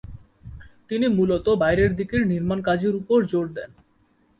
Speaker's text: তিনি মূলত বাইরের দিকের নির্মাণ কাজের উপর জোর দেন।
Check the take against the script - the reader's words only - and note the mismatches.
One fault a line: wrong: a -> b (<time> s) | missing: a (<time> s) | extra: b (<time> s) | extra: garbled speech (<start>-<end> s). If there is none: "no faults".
no faults